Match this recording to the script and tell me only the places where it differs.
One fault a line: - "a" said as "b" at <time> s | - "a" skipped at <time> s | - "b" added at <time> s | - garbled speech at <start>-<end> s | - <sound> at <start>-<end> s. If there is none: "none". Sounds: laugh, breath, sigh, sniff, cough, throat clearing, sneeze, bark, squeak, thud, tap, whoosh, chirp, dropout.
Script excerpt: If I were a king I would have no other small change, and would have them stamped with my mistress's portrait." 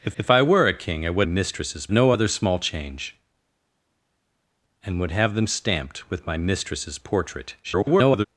- "if" added at 0.2 s
- "have" said as "mistress's" at 1.2 s
- garbled speech at 7.6-8.3 s